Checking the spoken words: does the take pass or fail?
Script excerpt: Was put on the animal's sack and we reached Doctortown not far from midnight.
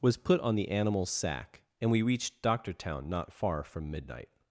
pass